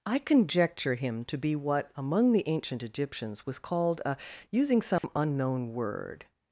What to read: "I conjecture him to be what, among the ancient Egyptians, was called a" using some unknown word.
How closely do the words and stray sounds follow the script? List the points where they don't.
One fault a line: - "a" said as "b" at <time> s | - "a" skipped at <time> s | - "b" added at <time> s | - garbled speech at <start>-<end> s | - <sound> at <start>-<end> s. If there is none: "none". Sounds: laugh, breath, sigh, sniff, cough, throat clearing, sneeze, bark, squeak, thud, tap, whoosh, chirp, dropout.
- dropout at 5.0-5.0 s